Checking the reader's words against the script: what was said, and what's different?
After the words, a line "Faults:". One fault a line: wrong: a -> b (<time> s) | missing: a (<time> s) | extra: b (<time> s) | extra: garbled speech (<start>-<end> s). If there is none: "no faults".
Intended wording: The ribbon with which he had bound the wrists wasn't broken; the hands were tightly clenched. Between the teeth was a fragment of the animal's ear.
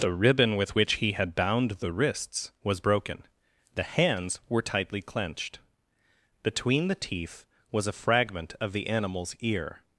The ribbon with which he had bound the wrists was broken; the hands were tightly clenched. Between the teeth was a fragment of the animal's ear.
Faults:
wrong: wasn't -> was (2.6 s)